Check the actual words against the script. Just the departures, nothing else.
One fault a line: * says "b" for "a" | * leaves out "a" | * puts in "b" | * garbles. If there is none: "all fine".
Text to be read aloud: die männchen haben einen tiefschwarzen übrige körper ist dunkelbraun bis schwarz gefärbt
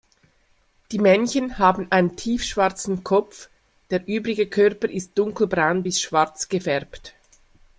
* puts in "kopf der"